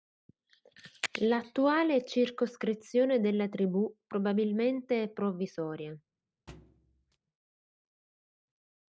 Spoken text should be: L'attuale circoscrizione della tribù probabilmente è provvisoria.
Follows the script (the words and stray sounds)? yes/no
no